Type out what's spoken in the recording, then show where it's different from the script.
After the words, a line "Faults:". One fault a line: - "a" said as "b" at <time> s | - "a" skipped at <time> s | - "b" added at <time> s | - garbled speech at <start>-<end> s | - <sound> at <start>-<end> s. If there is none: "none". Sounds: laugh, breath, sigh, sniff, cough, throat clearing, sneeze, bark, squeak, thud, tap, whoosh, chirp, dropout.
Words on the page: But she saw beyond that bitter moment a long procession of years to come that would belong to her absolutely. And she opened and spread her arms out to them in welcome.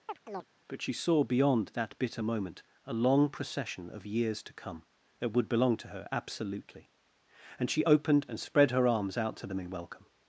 But she saw beyond that bitter moment a long procession of years to come that would belong to her absolutely. And she opened and spread her arms out to them in welcome.
Faults:
- chirp at 0.1-0.5 s